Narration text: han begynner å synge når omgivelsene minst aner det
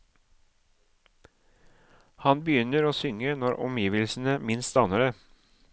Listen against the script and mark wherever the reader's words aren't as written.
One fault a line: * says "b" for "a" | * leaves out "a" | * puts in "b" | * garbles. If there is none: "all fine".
all fine